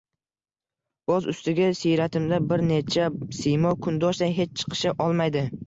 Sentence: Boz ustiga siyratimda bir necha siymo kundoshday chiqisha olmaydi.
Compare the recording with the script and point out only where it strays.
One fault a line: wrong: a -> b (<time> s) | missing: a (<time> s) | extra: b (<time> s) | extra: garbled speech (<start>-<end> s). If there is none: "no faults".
extra: hech (4.4 s)